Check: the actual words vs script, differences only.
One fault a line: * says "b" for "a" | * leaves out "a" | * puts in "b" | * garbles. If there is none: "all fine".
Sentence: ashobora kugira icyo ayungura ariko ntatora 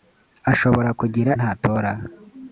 * leaves out "icyo ayungura ariko"